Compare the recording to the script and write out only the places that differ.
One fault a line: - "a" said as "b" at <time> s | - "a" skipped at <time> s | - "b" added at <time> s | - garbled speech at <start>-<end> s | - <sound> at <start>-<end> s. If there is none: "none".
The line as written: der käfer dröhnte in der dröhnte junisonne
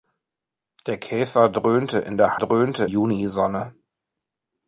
none